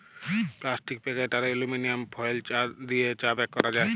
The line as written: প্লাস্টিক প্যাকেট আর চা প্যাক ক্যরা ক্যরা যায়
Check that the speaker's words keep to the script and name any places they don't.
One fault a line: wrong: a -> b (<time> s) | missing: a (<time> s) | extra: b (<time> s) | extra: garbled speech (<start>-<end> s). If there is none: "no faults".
extra: এলুমিলিয়াম ফয়েল দিয়ে (1.5 s)
missing: ক্যরা (3.7 s)